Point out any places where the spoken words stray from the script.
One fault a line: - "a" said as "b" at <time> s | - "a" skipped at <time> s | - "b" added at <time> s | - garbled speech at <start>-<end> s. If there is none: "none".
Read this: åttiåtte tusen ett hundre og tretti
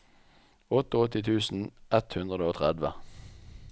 none